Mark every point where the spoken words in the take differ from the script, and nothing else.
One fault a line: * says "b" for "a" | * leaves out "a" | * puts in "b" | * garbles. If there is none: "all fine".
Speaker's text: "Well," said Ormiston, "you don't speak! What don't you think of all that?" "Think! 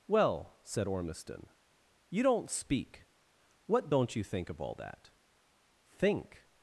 all fine